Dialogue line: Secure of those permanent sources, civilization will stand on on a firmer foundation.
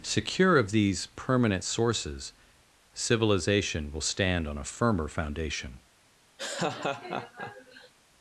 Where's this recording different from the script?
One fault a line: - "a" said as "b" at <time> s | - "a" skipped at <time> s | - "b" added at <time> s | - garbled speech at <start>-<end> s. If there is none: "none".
- "those" said as "these" at 0.7 s
- "on" skipped at 4.6 s